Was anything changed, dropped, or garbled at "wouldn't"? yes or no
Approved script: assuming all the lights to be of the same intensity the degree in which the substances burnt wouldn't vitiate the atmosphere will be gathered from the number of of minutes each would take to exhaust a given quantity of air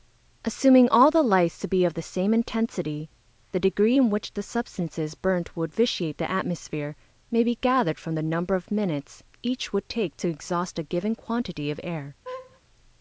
yes